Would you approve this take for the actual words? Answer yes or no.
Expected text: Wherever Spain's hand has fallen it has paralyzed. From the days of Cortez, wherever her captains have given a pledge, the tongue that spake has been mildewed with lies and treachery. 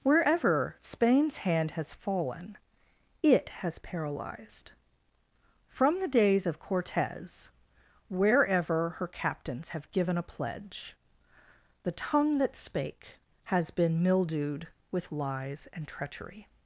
yes